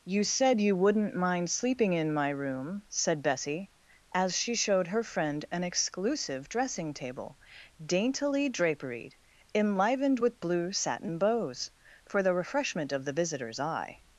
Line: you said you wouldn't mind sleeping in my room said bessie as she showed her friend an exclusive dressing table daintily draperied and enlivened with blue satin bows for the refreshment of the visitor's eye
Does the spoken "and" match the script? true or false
false